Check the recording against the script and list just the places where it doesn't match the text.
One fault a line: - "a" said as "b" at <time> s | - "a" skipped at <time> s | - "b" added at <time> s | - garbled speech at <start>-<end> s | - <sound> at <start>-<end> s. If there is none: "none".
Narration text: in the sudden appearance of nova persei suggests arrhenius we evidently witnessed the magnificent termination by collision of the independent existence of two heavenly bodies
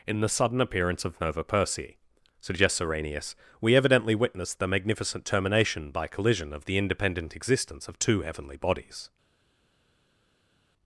none